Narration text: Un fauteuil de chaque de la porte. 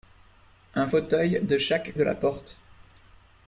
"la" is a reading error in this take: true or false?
false